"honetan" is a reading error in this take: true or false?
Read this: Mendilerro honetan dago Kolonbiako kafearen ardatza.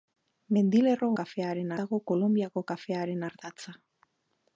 true